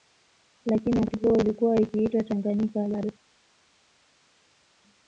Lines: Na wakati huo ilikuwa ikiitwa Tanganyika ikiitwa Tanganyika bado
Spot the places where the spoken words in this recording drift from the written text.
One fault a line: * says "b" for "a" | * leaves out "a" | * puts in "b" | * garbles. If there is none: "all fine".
* says "Lakini" for "Na"
* leaves out "ikiitwa Tanganyika"